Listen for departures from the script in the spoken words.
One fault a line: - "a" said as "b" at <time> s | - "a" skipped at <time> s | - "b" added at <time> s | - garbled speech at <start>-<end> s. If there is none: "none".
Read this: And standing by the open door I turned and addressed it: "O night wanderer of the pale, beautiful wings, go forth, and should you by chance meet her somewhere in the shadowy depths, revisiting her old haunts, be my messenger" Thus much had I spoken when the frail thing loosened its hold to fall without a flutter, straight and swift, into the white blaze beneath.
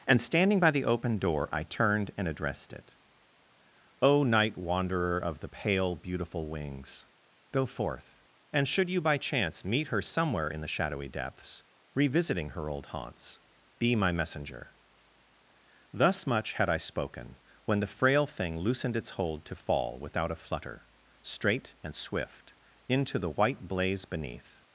none